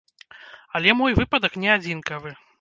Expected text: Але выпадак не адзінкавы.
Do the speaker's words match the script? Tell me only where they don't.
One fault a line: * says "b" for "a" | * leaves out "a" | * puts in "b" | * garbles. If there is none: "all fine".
* puts in "мой"